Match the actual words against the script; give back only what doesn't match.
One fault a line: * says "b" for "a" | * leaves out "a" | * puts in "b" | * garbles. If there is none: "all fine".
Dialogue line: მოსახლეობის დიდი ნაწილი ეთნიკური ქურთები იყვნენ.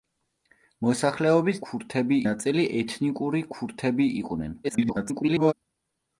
* says "ქურთები" for "დიდი"
* garbles